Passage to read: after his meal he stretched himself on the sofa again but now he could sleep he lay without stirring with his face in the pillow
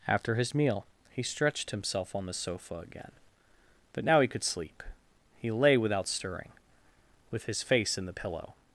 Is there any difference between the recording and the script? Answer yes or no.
no